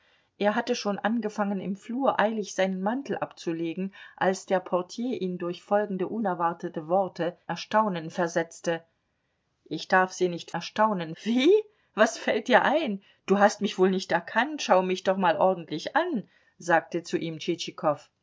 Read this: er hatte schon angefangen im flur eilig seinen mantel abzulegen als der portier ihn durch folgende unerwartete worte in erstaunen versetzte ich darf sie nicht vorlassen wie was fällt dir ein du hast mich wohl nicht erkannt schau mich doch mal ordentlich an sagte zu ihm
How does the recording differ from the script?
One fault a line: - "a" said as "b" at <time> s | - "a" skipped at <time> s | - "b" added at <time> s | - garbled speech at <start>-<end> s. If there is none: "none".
- "in" skipped at 7.4 s
- "vorlassen" said as "erstaunen" at 10.5 s